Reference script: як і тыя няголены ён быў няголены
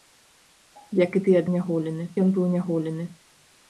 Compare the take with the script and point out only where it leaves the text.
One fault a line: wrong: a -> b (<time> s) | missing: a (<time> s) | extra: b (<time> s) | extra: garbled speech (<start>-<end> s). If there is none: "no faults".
no faults